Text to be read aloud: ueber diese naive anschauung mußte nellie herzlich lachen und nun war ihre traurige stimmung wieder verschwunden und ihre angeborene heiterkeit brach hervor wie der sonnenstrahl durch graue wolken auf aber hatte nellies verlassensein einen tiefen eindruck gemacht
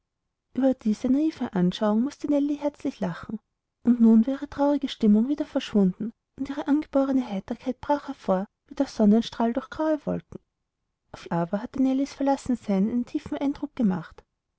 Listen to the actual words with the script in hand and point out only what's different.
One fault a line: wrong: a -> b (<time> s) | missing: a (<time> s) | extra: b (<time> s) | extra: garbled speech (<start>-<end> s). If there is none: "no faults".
no faults